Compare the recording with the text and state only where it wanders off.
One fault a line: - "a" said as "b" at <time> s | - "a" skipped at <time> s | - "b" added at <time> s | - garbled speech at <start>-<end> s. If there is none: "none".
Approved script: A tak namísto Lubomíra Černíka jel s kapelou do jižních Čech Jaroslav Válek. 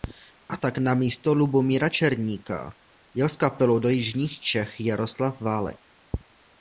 none